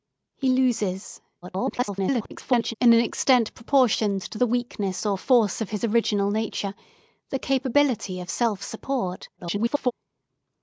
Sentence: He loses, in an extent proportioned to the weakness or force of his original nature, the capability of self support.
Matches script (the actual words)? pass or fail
fail